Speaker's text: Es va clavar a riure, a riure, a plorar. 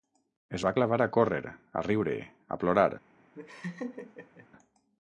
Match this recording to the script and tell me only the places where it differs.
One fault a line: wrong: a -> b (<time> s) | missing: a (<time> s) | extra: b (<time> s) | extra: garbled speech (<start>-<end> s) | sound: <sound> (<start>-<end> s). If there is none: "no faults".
wrong: riure -> córrer (1.2 s)
sound: laugh (3.3-4.5 s)